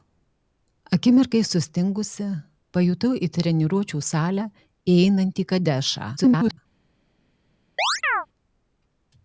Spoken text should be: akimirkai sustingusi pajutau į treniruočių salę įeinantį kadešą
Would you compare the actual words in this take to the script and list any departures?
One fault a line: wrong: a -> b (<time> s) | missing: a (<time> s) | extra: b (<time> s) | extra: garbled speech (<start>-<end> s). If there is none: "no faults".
extra: garbled speech (6.2-6.6 s)